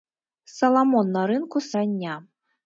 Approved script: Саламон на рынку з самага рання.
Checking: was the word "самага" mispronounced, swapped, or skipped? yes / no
yes